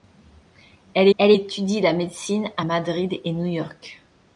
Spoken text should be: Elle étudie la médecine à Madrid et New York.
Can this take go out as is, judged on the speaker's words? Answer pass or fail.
fail